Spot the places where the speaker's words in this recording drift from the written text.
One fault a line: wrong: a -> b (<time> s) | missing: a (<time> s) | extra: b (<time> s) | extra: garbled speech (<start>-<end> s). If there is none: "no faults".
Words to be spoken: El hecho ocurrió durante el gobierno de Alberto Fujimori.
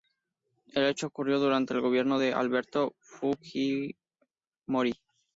no faults